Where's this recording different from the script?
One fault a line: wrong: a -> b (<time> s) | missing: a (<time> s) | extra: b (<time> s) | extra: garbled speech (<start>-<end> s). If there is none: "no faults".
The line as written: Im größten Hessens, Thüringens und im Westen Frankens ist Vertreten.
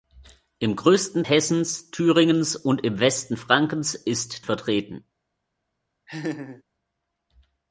no faults